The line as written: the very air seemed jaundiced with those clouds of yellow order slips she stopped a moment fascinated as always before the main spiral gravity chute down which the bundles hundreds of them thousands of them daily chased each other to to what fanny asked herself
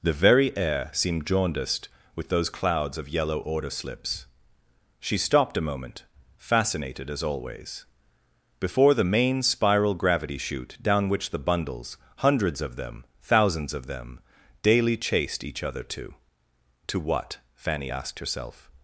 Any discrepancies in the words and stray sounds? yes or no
no